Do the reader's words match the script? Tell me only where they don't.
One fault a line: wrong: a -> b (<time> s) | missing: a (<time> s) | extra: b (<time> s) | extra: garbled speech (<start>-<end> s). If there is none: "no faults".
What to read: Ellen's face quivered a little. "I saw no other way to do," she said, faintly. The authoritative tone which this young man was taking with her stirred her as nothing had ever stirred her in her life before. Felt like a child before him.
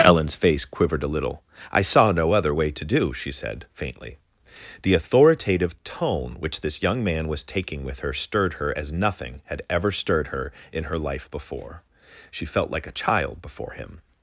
extra: She (12.3 s)